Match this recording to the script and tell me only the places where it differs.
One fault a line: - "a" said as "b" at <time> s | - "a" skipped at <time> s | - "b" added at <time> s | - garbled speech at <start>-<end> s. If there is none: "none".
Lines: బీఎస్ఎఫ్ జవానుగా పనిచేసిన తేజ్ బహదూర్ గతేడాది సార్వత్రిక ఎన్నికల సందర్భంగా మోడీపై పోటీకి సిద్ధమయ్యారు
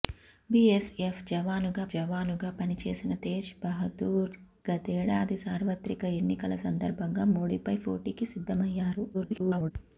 - "జవానుగా" added at 1.9 s
- garbled speech at 9.1-9.7 s